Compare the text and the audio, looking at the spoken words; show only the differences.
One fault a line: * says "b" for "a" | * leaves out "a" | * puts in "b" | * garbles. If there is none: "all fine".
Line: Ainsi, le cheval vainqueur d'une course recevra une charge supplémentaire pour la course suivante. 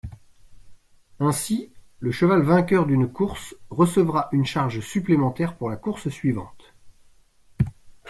all fine